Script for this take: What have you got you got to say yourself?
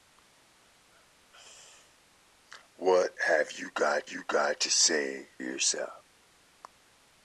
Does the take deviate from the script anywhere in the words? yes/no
no